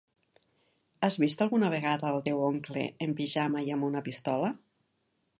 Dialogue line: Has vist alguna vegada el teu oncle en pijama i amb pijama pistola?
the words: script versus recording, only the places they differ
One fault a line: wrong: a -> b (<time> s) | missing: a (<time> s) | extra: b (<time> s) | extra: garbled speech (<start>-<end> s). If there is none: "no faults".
wrong: pijama -> una (3.9 s)